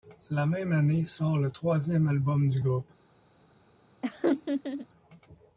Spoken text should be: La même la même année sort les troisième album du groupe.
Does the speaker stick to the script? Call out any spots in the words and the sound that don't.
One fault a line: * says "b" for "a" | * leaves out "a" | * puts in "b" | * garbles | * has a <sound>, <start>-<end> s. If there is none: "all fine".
* leaves out "la même"
* says "le" for "les"
* has a laugh, 4.0-4.9 s